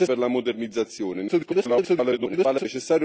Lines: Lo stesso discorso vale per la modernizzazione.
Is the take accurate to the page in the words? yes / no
no